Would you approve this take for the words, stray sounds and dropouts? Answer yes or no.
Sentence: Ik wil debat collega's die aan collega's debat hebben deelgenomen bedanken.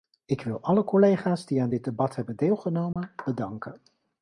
no